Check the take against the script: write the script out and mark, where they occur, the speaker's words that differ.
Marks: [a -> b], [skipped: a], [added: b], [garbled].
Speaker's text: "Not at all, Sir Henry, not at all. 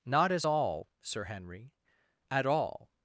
"Not [at -> as] all, Sir Henry, [skipped: not] at all.